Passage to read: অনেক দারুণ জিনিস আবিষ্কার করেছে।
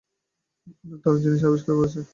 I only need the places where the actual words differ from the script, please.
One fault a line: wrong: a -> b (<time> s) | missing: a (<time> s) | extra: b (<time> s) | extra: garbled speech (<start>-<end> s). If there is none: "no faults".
no faults